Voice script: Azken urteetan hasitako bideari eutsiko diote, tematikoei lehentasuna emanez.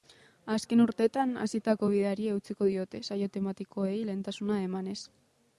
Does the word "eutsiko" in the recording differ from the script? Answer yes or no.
no